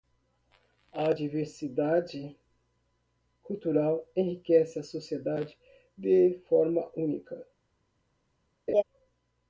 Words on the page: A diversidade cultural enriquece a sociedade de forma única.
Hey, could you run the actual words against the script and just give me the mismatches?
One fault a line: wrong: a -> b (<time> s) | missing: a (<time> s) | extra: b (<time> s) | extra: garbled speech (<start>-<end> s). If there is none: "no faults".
no faults